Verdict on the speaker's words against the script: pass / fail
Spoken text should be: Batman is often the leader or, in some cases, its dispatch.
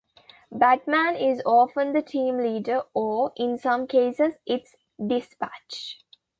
fail